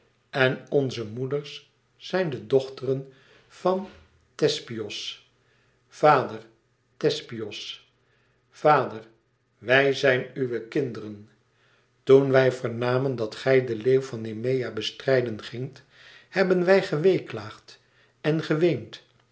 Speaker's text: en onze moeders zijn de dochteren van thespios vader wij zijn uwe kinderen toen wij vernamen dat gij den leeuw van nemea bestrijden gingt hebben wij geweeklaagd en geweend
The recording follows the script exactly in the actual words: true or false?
false